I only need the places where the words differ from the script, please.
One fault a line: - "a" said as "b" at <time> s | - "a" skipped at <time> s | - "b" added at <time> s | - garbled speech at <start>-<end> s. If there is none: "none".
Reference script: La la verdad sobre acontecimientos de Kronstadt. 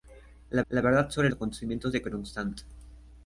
none